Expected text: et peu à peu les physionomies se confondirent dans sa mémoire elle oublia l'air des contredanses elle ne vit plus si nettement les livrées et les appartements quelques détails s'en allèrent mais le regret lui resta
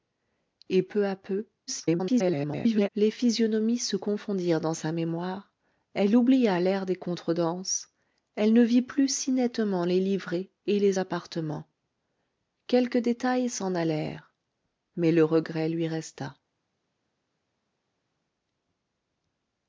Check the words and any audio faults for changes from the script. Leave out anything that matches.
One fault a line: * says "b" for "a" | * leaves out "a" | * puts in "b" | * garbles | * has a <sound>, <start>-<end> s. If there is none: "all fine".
* garbles